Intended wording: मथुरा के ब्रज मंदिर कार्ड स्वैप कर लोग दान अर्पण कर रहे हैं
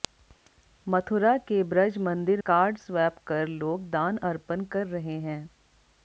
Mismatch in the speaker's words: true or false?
false